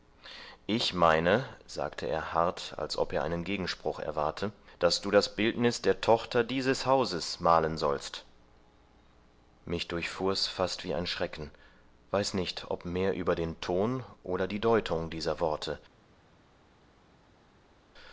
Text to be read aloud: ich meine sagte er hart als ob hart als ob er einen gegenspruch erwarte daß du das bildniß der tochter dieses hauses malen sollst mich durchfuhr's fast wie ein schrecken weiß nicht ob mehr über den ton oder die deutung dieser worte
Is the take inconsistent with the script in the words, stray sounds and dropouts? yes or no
yes